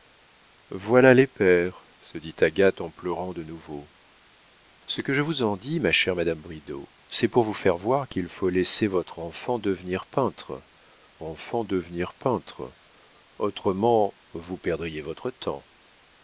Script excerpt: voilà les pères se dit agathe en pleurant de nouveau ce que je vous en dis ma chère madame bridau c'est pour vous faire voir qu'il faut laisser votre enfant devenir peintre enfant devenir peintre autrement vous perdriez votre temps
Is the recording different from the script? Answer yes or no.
no